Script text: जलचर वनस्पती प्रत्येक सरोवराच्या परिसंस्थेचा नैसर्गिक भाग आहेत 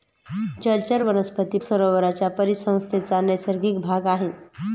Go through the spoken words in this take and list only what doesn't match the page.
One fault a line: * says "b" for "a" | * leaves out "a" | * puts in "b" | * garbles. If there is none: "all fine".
* leaves out "प्रत्येक"